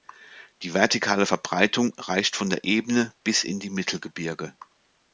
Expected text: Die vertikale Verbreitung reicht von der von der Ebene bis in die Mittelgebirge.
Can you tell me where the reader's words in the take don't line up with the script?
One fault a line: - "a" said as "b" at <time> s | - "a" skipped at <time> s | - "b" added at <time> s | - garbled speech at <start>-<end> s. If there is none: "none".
- "von der" skipped at 2.7 s